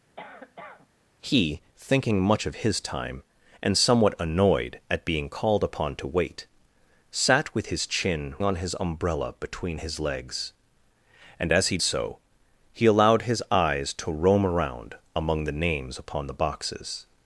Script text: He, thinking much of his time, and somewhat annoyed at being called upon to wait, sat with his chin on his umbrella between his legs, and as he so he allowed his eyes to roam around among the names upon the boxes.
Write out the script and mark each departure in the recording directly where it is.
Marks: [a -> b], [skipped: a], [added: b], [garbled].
He, thinking much of his time, and somewhat annoyed at being called upon to wait, sat with his chin on his umbrella between his legs, and as he so he allowed his eyes to roam around among the names upon the boxes.